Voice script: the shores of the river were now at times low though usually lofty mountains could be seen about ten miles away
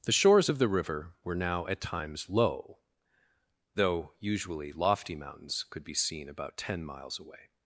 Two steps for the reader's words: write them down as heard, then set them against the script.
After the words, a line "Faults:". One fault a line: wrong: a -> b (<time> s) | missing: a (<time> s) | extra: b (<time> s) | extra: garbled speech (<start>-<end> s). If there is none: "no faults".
the shores of the river were now at times low though usually lofty mountains could be seen about ten miles away
Faults:
no faults